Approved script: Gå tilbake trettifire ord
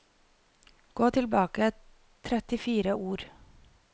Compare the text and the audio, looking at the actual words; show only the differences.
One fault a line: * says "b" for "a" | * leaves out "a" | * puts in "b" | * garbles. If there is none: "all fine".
all fine